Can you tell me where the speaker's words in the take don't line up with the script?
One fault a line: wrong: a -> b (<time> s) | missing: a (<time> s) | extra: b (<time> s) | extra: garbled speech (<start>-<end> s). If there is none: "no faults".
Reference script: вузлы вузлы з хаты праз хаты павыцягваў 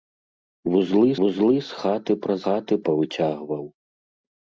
no faults